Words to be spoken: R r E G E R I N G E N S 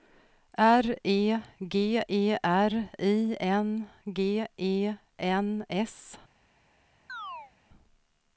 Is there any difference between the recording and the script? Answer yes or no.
yes